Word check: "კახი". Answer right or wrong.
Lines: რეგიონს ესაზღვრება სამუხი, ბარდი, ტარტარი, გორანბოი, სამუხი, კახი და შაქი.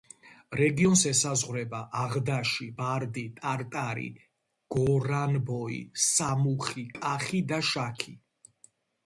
right